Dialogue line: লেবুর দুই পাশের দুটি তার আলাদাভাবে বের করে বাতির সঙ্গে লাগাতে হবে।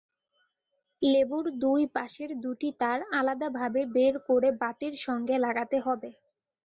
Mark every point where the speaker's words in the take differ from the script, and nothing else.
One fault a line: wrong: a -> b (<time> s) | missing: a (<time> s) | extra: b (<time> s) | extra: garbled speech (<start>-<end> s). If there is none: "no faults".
no faults